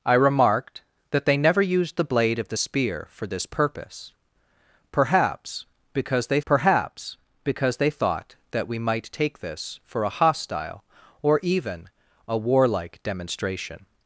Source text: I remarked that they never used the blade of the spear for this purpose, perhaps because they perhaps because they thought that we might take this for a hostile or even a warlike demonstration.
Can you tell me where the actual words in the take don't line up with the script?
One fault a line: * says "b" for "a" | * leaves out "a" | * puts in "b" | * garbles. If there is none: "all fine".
all fine